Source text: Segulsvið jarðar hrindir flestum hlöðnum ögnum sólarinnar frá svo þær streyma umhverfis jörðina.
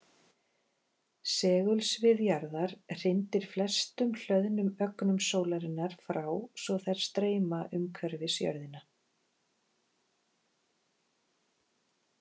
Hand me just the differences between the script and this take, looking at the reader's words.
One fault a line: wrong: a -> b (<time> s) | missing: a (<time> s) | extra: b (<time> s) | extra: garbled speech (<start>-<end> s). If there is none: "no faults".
no faults